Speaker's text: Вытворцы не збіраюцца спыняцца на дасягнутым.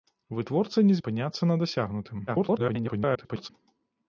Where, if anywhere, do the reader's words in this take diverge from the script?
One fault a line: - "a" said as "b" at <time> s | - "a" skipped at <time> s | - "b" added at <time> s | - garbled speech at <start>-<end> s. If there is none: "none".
- "збіраюцца" skipped at 0.9 s
- garbled speech at 2.3-3.5 s